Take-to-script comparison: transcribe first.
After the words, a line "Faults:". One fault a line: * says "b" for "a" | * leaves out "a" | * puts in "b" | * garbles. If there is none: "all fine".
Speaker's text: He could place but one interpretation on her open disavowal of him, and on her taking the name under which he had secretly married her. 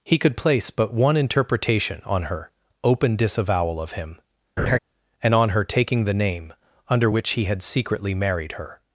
He could place but one interpretation on her open disavowal of him, and on her taking the name under which he had secretly married her.
Faults:
all fine